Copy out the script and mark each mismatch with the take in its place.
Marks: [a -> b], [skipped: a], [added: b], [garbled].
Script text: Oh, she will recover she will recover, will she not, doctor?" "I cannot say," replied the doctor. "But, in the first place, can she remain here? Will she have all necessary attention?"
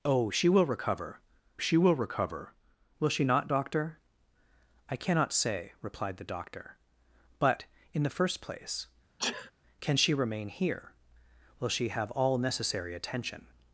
Oh, she will recover she will recover, will she not, doctor?" "I cannot say," replied the doctor. "But, in the first place, can she remain here? Will she have all necessary attention?"